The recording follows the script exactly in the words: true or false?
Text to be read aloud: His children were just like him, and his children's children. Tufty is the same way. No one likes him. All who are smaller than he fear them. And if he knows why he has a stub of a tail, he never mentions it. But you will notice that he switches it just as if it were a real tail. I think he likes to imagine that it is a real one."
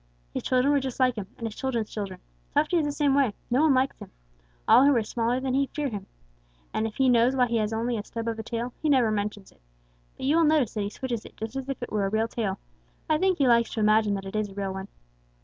false